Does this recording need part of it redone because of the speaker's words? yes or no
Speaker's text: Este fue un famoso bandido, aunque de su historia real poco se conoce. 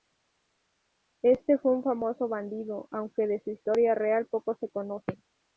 no